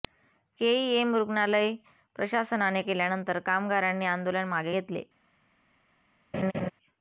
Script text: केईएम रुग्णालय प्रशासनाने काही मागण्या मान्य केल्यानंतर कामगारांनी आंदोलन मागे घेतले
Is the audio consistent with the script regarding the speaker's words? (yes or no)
no